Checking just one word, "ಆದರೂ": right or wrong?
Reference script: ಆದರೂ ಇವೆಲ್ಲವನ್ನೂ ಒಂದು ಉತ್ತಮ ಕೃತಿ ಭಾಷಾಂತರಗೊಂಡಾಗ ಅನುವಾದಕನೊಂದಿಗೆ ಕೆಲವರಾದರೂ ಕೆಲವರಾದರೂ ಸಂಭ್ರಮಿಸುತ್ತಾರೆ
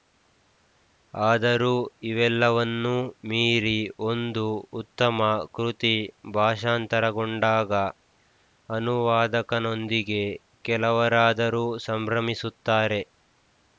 right